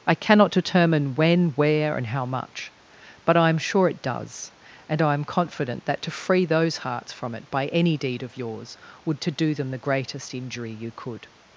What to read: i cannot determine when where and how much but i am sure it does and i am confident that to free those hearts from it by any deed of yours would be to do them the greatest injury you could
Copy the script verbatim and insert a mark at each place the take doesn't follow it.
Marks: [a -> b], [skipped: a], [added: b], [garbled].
i cannot determine when where and how much but i am sure it does and i am confident that to free those hearts from it by any deed of yours would [skipped: be] to do them the greatest injury you could